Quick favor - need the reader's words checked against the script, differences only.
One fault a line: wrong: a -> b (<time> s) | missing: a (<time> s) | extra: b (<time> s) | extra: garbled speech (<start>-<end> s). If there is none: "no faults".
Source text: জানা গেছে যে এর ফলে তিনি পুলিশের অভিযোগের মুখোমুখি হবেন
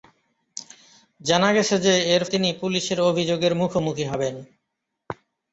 missing: ফলে (2.2 s)